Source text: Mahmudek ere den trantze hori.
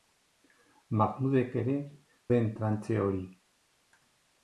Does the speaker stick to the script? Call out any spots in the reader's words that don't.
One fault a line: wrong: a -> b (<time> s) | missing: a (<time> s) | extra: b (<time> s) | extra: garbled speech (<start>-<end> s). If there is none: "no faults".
no faults